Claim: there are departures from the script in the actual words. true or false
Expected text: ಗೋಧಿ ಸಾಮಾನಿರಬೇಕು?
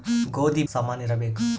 false